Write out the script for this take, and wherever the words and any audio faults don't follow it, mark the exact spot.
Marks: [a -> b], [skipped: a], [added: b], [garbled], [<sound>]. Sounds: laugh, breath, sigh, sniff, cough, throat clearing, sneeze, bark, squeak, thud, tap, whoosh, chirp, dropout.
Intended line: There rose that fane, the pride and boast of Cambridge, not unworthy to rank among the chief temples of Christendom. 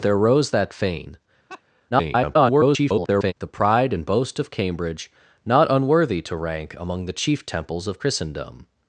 There rose that fane, [laugh] [garbled] the pride and boast of Cambridge, not unworthy to rank among the chief temples of Christendom.